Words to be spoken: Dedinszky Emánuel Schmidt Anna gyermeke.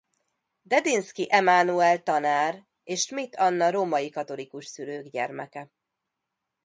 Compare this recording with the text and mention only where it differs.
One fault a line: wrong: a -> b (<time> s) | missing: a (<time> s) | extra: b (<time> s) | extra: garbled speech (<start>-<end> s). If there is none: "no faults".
extra: tanár és (2.0 s)
extra: római katolikus szülők (3.7 s)